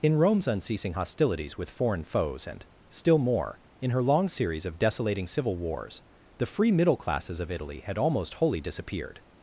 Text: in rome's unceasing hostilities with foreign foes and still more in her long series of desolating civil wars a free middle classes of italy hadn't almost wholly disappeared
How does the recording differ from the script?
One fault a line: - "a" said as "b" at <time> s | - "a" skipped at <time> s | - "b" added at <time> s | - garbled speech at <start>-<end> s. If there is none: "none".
- "a" said as "the" at 6.4 s
- "hadn't" said as "had" at 7.8 s